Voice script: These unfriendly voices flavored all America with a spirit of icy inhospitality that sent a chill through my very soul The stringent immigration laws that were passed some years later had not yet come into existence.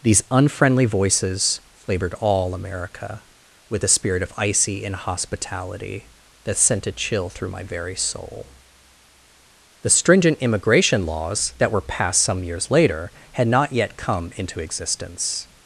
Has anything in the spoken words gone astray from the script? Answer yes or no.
no